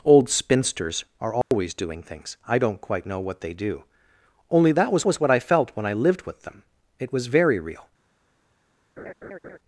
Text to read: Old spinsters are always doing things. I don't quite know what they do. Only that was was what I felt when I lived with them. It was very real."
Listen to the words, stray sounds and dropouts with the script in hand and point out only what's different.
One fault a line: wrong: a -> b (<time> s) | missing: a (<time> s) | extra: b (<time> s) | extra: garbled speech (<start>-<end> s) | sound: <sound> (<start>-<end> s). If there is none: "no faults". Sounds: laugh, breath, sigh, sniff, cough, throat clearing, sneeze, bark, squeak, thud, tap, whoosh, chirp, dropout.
sound: dropout (1.4-1.5 s)
sound: laugh (9.0-9.6 s)